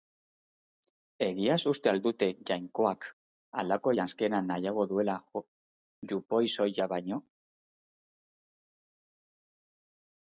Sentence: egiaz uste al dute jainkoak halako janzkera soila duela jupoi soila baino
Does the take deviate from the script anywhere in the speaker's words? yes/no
yes